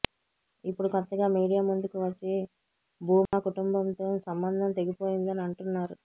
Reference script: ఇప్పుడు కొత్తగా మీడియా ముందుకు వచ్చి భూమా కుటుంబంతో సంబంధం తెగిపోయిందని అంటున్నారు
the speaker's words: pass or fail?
pass